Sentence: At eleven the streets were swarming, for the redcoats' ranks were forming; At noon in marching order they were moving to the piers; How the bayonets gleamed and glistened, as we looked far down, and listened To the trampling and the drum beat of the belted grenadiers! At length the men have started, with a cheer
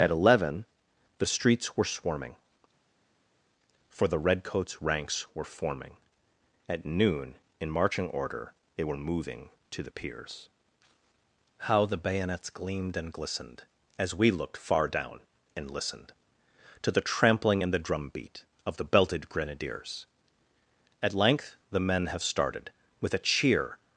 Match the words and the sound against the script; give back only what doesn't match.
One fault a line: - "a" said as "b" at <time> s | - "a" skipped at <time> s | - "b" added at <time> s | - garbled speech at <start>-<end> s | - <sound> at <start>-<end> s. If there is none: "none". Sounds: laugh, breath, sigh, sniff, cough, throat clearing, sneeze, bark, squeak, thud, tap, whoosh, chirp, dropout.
none